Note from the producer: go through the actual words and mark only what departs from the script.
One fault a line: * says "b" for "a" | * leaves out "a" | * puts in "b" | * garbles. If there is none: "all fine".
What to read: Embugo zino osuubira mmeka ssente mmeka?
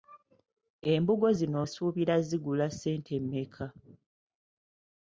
* says "zigula" for "mmeka"